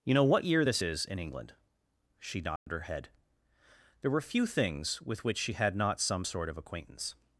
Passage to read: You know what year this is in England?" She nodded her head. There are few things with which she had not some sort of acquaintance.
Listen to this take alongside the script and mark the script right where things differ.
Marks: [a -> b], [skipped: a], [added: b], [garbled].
You know what year this is in England?" She nodded her head. There [are -> were] few things with which she had not some sort of acquaintance.